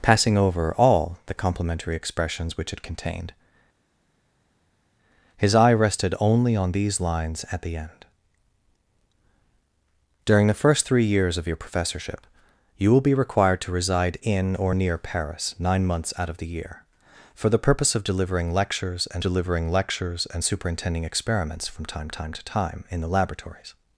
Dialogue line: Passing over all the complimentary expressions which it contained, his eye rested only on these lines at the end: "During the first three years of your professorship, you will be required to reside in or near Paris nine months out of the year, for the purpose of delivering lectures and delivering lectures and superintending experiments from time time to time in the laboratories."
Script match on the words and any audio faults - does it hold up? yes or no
yes